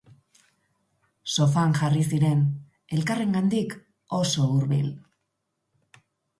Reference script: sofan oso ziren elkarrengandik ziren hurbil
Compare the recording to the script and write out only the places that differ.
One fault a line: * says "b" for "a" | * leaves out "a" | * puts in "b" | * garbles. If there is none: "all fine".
* says "jarri" for "oso"
* says "oso" for "ziren"